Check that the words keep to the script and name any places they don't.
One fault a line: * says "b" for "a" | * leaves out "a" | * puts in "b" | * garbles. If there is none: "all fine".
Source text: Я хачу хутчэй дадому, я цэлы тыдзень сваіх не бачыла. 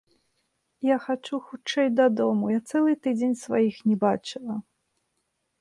all fine